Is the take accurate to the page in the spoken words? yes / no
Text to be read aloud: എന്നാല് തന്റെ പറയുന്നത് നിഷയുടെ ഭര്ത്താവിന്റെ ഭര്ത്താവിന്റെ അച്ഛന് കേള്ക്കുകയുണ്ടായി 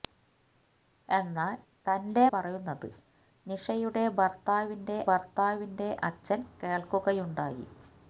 yes